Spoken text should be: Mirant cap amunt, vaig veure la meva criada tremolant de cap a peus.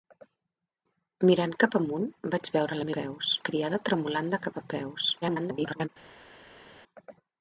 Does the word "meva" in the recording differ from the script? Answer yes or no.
yes